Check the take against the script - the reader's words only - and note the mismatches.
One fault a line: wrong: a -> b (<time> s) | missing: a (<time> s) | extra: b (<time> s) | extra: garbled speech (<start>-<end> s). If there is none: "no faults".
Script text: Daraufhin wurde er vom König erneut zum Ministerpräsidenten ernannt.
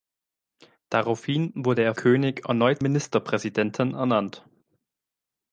missing: vom (1.9 s)
missing: zum (2.8 s)